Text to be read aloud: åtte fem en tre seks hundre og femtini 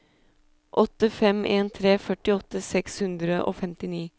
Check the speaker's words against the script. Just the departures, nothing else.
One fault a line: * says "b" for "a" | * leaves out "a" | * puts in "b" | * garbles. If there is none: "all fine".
* puts in "førtiåtte"